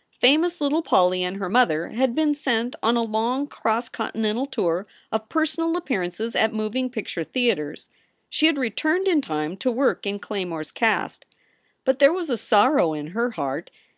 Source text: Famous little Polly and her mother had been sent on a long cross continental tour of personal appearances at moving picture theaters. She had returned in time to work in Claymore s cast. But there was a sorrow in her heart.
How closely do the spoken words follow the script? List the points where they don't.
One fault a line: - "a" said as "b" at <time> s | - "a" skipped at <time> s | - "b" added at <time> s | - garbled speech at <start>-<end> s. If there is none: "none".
none